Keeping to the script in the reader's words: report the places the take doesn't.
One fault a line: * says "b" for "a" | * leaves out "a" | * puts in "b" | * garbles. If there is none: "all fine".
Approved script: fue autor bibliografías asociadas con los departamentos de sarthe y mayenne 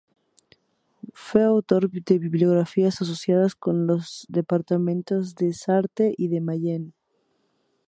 * puts in "de"
* puts in "de"